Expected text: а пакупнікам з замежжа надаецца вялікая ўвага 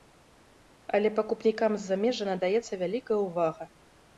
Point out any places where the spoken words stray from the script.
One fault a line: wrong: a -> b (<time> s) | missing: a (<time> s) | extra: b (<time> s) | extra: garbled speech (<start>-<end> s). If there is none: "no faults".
wrong: а -> але (1.0 s)